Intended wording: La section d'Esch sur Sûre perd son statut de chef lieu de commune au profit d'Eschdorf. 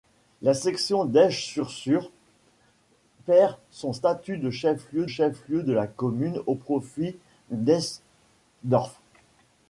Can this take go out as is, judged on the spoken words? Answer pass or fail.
fail